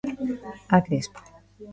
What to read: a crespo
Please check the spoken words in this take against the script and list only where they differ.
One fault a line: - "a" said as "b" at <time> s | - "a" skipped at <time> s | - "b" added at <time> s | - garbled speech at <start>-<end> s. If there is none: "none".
none